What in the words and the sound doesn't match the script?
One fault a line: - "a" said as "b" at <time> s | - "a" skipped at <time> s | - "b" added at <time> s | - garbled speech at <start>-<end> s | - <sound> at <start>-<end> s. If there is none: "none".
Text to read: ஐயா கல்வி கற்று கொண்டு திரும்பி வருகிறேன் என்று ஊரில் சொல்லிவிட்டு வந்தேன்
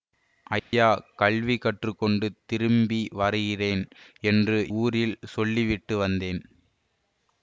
- dropout at 0.6-0.7 s